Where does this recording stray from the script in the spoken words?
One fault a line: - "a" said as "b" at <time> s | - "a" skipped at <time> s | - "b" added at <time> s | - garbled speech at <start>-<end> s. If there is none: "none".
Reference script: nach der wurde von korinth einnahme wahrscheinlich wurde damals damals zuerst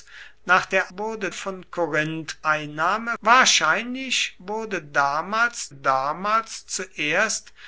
none